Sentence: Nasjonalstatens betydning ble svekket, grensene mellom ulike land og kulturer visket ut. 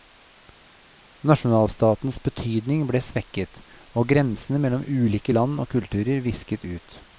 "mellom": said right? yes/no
yes